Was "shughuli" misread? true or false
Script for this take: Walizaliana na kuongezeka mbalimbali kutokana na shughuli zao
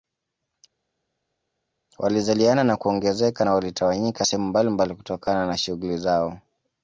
false